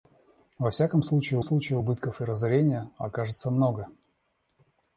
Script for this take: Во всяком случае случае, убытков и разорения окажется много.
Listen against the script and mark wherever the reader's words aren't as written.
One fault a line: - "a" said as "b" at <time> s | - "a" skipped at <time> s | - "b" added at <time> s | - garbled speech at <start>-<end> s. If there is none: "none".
none